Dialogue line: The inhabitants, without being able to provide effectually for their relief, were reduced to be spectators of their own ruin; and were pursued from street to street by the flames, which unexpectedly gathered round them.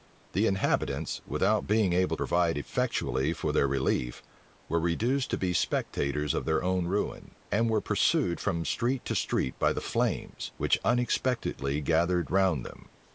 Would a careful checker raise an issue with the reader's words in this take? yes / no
yes